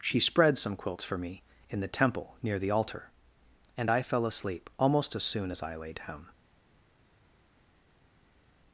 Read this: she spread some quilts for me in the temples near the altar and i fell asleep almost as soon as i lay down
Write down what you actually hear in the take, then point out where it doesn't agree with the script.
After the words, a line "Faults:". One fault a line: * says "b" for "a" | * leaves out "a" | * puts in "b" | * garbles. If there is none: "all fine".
she spread some quilts for me in the temple near the altar and i fell asleep almost as soon as i lay down
Faults:
* says "temple" for "temples"